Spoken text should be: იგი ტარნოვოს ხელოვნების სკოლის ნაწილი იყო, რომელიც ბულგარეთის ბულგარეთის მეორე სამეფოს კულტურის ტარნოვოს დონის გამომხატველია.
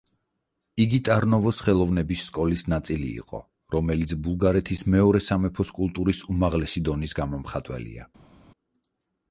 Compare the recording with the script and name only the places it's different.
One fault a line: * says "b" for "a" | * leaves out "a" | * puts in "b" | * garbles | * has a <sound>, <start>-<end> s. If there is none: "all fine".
* leaves out "ბულგარეთის"
* says "უმაღლესი" for "ტარნოვოს"